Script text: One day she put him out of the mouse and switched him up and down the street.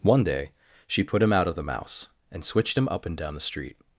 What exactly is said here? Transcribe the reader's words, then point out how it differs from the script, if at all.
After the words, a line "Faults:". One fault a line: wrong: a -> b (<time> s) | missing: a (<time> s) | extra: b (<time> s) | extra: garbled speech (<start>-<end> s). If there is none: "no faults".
One day she put him out of the mouse and switched him up and down the street.
Faults:
no faults